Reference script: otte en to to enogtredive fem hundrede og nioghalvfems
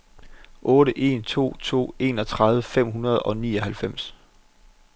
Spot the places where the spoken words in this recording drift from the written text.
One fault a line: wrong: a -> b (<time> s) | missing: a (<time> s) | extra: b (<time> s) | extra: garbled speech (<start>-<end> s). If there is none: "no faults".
no faults